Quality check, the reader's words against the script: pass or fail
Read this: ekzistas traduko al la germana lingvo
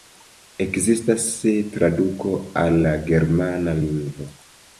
pass